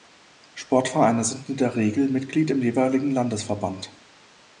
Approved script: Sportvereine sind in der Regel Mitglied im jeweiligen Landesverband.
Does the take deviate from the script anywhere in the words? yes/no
no